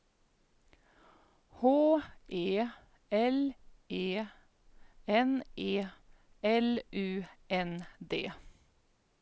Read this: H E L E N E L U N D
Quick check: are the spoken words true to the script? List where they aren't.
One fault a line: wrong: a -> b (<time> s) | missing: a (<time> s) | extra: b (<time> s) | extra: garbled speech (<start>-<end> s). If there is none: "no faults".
no faults